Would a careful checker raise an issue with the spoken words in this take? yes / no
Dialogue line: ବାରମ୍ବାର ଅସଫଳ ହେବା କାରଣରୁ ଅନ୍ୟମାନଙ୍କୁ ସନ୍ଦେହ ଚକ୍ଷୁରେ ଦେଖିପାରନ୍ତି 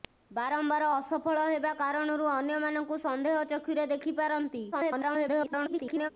yes